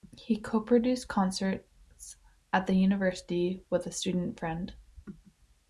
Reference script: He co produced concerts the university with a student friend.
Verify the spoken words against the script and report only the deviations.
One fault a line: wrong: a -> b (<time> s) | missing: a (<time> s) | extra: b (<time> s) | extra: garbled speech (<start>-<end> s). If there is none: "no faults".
extra: at (2.5 s)